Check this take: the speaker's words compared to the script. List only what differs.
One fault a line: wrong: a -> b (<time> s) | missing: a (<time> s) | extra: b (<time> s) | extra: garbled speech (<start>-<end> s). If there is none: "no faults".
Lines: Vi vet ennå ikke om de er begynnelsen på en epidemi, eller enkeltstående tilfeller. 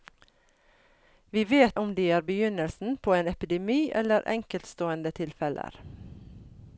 missing: ennå ikke (1.8 s)